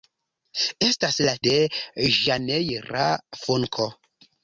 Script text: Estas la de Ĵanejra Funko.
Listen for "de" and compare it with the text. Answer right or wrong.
right